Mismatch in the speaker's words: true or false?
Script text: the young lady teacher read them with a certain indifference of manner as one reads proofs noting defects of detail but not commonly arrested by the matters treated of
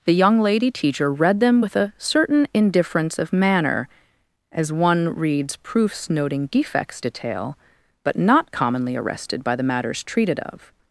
true